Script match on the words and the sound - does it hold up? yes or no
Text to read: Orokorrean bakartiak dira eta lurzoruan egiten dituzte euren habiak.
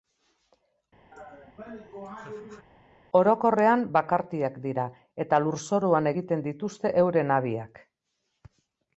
no